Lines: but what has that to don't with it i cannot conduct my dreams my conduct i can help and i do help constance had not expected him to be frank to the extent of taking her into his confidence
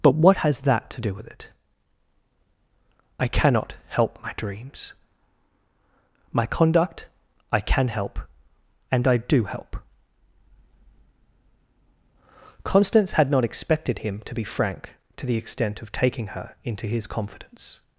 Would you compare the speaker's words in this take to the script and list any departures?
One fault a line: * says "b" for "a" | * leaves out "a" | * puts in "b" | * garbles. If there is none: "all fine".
* says "do" for "don't"
* says "help" for "conduct"